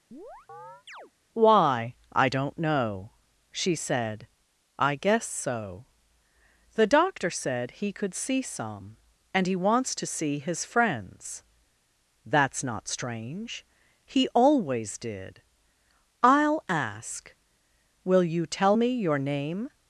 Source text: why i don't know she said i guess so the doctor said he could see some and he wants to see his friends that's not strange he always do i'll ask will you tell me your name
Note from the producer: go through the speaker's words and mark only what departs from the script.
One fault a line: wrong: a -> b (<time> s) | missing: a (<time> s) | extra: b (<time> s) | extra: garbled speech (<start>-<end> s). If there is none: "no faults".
wrong: do -> did (15.0 s)